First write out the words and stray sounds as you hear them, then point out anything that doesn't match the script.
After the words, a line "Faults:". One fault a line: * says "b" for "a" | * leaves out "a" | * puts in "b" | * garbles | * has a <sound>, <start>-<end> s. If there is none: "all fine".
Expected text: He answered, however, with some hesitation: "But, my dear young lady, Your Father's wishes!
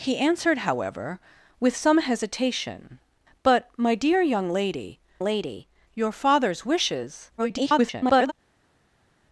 He answered, however, with some hesitation: "But, my dear young lady lady, Your Father's wishes! [garbled]
Faults:
* puts in "lady"
* garbles